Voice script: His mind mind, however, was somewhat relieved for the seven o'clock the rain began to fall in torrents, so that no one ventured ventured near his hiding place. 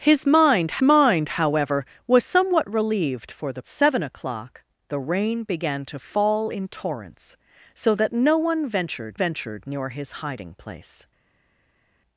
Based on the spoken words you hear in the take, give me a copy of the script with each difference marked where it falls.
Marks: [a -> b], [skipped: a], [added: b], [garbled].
His mind mind, however, was somewhat relieved for the seven o'clock the rain began to fall in torrents, so that no one ventured ventured near his hiding place.